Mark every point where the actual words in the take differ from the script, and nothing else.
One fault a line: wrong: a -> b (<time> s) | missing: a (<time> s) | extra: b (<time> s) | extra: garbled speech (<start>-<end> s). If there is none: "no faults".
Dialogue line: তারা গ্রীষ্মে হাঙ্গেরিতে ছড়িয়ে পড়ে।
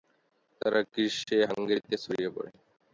no faults